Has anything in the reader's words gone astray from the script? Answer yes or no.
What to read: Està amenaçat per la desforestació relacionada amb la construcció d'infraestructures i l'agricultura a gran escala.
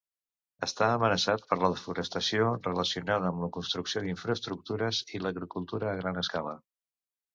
no